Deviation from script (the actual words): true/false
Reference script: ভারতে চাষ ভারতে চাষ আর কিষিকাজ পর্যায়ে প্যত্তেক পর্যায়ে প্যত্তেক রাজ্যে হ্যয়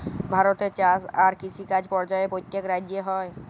true